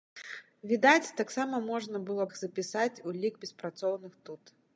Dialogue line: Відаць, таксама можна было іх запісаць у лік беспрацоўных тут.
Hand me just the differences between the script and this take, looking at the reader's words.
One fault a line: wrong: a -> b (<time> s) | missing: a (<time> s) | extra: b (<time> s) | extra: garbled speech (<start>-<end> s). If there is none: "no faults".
no faults